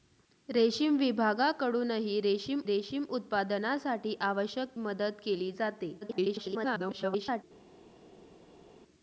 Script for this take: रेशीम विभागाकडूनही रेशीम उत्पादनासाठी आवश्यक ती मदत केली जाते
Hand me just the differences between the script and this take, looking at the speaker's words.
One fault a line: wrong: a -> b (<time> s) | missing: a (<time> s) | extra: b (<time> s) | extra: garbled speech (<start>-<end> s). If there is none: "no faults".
extra: रेशीम (2.7 s)
missing: ती (4.8 s)
extra: garbled speech (6.0-7.4 s)